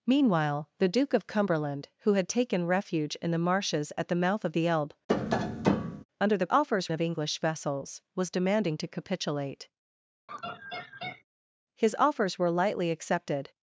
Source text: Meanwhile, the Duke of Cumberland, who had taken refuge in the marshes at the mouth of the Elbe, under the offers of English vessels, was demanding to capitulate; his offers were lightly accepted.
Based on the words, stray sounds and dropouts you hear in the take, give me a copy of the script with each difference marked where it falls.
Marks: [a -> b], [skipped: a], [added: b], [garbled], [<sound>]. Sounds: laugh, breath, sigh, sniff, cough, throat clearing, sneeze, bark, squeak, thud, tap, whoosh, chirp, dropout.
Meanwhile, the Duke of Cumberland, who had taken refuge in the marshes at the mouth of the Elbe, [tap] under the offers of English vessels, was demanding to capitulate; [laugh] his offers were lightly accepted.